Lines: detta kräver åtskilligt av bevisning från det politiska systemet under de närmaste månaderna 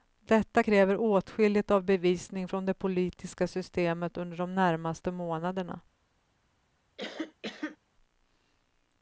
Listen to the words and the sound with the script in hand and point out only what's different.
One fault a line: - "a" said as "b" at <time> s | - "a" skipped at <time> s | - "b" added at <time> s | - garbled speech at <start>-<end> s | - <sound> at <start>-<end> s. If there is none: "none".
- cough at 7.0-7.8 s